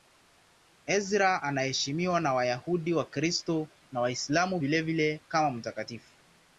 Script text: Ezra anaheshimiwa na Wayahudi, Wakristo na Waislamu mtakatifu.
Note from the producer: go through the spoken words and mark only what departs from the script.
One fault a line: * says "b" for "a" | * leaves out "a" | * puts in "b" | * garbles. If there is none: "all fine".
* puts in "vilevile kama"